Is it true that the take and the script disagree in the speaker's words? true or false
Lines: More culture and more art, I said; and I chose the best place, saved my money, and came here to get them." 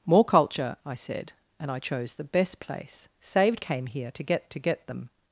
true